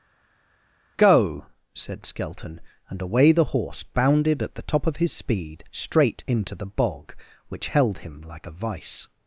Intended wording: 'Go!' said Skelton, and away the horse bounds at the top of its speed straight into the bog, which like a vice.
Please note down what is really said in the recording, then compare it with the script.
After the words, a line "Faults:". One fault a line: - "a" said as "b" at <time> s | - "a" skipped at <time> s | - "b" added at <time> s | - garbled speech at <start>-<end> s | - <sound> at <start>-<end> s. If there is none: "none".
'Go!' said Skelton, and away the horse bounded at the top of his speed straight into the bog, which held him like a vice.
Faults:
- "bounds" said as "bounded" at 3.8 s
- "its" said as "his" at 5.0 s
- "held him" added at 7.7 s